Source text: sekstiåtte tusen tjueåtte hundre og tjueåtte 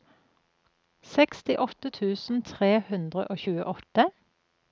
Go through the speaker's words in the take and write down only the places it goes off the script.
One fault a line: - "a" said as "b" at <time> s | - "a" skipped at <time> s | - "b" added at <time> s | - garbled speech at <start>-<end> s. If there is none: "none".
- "tjueåtte" said as "tre" at 2.5 s